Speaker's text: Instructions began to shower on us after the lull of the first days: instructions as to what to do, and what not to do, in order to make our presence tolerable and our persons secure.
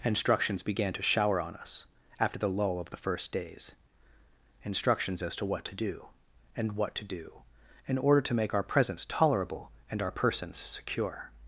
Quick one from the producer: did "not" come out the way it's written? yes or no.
no